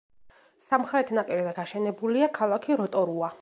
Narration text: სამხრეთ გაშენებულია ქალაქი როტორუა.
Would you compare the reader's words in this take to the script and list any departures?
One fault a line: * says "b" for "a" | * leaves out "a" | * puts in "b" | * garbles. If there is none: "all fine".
* puts in "ნაპირზე"